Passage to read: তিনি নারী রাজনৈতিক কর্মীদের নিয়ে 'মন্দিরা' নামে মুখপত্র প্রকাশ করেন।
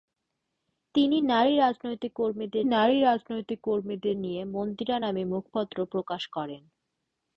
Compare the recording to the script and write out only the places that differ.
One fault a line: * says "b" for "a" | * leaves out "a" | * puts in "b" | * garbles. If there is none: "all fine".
* puts in "নারী রাজনৈতিক কর্মীদের"